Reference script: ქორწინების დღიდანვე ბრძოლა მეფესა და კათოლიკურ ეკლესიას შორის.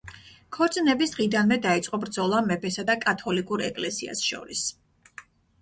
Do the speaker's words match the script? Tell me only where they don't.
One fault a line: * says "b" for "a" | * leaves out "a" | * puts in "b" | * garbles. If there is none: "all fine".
* puts in "დაიწყო"